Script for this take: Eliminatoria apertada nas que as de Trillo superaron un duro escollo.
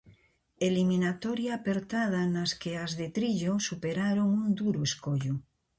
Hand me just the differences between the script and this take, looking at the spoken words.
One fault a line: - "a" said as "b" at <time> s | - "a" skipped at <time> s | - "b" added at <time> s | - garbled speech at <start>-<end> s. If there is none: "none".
none